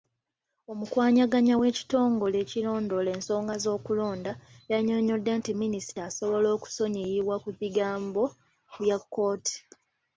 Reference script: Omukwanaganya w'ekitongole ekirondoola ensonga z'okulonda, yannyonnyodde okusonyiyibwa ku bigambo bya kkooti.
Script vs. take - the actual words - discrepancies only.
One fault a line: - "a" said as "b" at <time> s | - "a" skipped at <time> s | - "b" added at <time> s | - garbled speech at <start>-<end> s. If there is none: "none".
- "nti Minisita asobola" added at 5.4 s